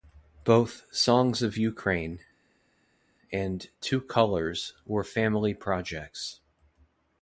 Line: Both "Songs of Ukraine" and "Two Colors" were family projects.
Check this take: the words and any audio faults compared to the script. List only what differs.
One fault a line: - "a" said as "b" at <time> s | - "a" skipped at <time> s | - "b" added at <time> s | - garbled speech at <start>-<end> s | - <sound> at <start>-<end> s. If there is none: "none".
none